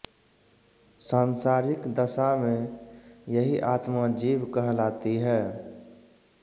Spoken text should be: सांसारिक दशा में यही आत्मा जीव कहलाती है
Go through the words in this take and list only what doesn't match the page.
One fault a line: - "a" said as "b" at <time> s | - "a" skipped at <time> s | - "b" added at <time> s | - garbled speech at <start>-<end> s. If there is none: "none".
none